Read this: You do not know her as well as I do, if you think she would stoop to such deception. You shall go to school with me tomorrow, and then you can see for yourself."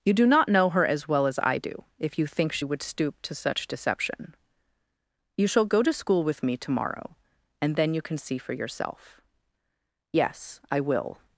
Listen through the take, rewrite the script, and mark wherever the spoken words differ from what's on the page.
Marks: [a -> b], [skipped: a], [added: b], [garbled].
You do not know her as well as I do, if you think she would stoop to such deception. You shall go to school with me tomorrow, and then you can see for yourself." [added: Yes I will]